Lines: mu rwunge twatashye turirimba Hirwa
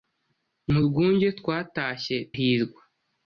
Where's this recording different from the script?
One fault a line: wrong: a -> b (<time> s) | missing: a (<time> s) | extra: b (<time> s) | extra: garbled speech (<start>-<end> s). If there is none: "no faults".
missing: turirimba (2.2 s)